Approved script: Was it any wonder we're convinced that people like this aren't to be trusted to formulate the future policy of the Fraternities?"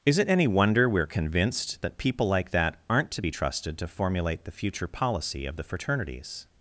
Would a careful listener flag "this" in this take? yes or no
yes